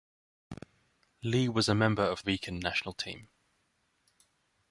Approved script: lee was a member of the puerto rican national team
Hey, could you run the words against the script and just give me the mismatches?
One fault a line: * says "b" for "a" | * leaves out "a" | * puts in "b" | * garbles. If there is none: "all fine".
* leaves out "the puerto"